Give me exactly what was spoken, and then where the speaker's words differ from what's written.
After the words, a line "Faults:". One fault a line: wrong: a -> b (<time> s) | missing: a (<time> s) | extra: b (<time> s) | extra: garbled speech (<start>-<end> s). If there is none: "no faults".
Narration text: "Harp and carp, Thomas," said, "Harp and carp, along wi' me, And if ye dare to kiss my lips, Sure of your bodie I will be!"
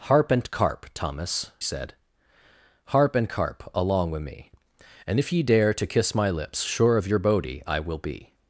"Harp and carp, Thomas," said, "Harp and carp, along wi' me, And if ye dare to kiss my lips, Sure of your bodie I will be!"
Faults:
no faults